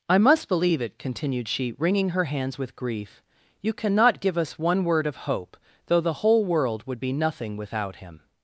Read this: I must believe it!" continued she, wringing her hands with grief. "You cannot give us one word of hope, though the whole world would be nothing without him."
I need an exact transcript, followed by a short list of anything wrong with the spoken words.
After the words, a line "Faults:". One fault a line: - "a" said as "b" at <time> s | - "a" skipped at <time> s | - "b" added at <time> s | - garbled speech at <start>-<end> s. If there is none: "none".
I must believe it!" continued she, wringing her hands with grief. "You cannot give us one word of hope, though the whole world would be nothing without him."
Faults:
none